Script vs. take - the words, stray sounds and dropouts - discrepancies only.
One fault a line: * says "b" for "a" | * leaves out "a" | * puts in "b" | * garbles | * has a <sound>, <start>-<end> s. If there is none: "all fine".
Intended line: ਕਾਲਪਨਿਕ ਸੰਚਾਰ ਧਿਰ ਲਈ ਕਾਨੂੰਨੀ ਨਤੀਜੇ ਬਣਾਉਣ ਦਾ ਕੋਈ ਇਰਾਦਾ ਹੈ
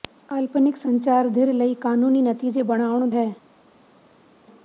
* leaves out "ਦਾ ਕੋਈ ਇਰਾਦਾ"